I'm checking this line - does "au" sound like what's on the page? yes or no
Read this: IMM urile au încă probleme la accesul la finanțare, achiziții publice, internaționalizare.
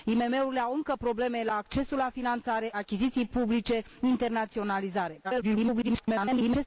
yes